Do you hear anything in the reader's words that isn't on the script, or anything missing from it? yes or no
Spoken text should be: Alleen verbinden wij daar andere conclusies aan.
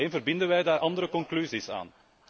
no